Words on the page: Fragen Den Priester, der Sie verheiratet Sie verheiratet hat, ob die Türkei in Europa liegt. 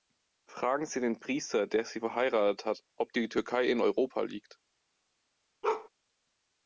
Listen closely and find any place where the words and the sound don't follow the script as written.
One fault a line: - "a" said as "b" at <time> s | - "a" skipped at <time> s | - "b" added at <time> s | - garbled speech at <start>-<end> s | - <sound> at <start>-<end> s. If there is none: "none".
- "Sie" added at 0.9 s
- "Sie verheiratet" skipped at 2.6 s
- bark at 5.6-5.9 s